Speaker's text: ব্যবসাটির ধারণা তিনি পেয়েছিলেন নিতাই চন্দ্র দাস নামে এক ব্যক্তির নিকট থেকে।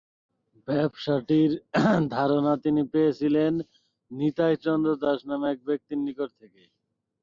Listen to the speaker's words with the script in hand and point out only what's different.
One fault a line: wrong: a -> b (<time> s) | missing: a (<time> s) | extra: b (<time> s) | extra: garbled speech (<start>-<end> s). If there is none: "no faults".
no faults